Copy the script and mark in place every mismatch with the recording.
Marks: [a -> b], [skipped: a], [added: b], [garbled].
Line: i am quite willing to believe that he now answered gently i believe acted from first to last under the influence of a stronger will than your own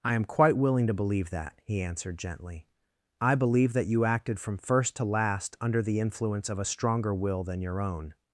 i am quite willing to believe that he [skipped: now] answered gently i believe [added: that you] acted from first to last under the influence of a stronger will than your own